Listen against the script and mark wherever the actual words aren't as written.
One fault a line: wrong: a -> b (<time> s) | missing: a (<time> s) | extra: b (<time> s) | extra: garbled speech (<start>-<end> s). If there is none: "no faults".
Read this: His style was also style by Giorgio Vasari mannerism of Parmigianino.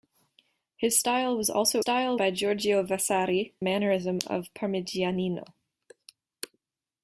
no faults